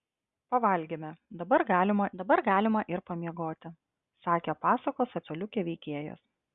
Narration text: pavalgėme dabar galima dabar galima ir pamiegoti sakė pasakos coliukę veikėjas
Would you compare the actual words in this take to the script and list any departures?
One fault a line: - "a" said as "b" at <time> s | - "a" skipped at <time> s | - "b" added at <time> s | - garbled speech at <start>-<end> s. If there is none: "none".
none